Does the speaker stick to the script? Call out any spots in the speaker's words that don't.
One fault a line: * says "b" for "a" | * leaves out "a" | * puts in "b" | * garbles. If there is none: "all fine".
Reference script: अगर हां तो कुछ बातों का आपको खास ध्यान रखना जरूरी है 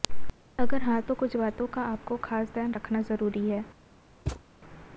all fine